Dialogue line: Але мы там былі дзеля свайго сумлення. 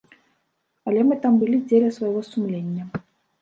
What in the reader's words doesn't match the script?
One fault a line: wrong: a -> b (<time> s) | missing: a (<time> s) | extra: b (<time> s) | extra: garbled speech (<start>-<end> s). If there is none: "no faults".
no faults